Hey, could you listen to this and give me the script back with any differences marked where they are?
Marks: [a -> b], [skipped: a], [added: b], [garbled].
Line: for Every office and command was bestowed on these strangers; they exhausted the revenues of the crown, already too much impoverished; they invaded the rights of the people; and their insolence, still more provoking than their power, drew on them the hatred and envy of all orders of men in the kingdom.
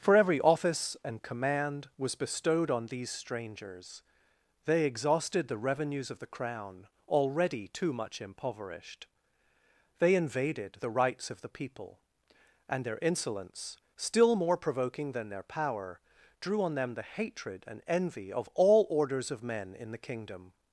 for Every office and command was bestowed on these strangers; they exhausted the revenues of the crown, already too much impoverished; they invaded the rights of the people; and their insolence, still more provoking than their power, drew on them the hatred and envy of all orders of men in the kingdom.